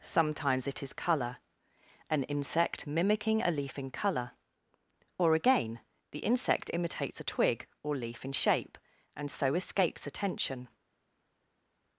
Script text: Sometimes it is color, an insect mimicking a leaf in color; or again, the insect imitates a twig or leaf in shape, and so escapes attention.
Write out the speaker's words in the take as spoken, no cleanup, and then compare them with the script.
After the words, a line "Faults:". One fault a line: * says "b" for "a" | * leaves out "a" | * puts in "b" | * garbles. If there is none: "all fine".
Sometimes it is color, an insect mimicking a leaf in color; or again, the insect imitates a twig or leaf in shape, and so escapes attention.
Faults:
all fine